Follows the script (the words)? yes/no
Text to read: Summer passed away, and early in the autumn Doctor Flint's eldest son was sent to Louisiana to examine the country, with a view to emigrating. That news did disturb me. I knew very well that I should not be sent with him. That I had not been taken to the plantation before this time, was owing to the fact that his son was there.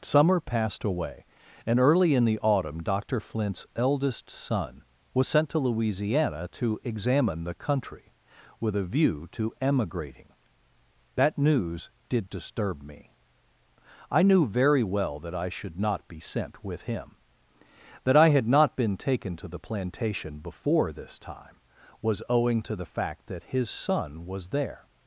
yes